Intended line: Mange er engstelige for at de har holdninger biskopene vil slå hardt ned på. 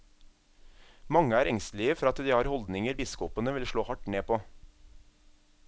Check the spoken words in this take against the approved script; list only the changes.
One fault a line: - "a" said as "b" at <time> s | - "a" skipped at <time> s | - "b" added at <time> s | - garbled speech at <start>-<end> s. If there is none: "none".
none